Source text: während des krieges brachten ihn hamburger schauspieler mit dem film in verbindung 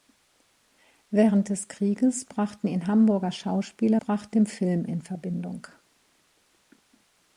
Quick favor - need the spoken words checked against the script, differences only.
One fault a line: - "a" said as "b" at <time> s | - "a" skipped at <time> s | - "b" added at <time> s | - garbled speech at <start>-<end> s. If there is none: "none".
- "mit" said as "brachten" at 4.0 s